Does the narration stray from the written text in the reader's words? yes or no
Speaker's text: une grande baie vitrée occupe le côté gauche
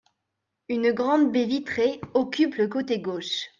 no